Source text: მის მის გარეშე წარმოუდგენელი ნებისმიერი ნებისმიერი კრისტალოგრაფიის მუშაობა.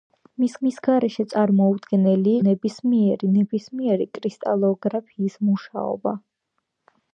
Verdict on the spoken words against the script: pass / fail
pass